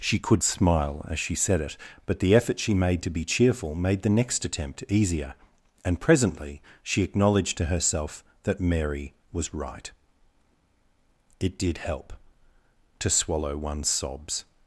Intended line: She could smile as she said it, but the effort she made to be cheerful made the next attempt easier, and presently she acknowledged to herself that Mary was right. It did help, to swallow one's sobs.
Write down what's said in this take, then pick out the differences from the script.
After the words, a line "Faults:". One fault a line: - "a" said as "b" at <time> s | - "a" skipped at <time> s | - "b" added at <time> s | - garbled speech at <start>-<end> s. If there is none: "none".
She could smile as she said it, but the effort she made to be cheerful made the next attempt easier, and presently she acknowledged to herself that Mary was right. It did help, to swallow one's sobs.
Faults:
none